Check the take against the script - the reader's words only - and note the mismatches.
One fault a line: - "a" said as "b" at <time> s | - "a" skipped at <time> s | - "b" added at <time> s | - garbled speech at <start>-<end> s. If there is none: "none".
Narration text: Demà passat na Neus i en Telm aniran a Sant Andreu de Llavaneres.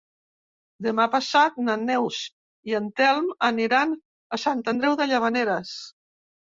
none